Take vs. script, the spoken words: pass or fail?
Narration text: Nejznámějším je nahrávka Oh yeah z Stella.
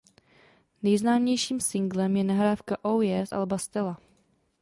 fail